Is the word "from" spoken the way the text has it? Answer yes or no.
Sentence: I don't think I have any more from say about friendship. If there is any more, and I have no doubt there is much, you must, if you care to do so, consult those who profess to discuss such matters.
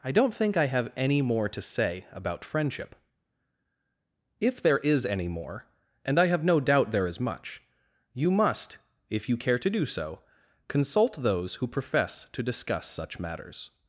no